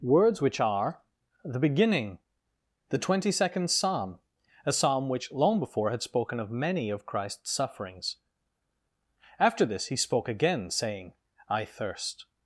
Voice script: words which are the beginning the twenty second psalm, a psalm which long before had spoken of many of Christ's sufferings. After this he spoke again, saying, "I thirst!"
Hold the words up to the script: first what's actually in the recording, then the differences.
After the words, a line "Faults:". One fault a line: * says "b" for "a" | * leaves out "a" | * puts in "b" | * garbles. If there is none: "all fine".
words which are the beginning the twenty second psalm, a psalm which long before had spoken of many of Christ's sufferings. After this he spoke again, saying, "I thirst!"
Faults:
all fine